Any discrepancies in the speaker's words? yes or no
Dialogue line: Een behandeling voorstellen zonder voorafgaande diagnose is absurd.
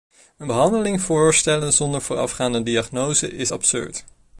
no